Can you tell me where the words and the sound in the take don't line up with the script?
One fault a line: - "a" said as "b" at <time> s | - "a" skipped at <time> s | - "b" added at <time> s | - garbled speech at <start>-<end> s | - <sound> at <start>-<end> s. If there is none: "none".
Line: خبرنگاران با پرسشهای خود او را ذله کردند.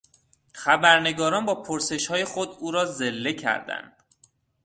none